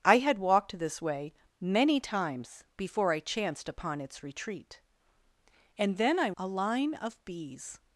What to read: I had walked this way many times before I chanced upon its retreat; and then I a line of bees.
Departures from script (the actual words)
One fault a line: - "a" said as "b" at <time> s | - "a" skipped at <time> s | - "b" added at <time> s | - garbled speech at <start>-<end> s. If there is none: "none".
none